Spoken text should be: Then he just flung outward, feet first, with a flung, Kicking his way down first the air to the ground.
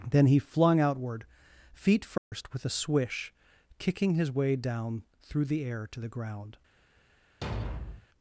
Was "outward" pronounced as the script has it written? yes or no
yes